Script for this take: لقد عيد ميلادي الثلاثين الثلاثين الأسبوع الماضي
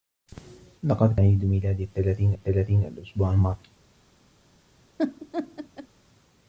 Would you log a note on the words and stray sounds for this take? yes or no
yes